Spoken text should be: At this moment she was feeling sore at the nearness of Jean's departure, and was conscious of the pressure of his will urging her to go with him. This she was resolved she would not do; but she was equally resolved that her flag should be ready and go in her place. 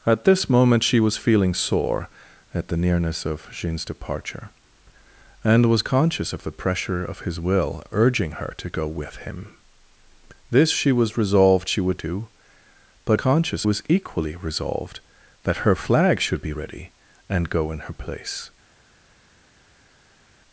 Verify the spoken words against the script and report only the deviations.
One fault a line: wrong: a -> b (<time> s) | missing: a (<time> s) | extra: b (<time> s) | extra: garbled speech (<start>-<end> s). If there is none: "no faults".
missing: not (12.0 s)
wrong: she -> conscious (13.2 s)